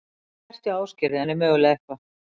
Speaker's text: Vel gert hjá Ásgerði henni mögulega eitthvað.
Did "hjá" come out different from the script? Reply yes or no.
no